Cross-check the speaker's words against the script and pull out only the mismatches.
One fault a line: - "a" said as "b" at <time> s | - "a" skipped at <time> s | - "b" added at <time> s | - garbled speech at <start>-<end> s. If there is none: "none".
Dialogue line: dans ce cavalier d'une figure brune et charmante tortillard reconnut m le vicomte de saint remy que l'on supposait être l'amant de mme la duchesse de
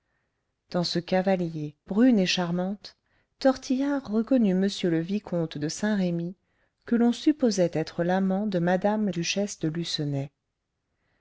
- "d'une figure" skipped at 1.8 s
- "la" skipped at 9.1 s